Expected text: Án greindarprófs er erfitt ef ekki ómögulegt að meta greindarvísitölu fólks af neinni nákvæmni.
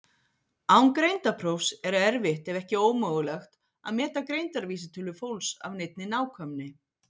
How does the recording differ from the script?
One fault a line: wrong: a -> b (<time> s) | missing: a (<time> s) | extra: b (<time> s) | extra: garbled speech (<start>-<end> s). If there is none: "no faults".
no faults